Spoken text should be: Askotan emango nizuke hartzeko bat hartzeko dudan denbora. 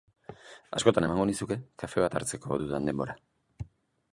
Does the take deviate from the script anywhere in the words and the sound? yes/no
yes